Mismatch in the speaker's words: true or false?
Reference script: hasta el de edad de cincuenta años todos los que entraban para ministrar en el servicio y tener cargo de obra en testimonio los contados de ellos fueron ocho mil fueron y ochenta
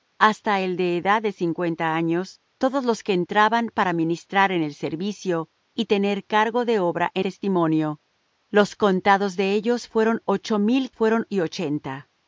false